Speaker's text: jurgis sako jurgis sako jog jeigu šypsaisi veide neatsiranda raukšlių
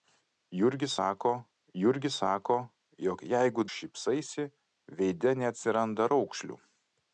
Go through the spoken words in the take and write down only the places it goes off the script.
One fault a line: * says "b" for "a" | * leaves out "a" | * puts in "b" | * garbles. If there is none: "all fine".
all fine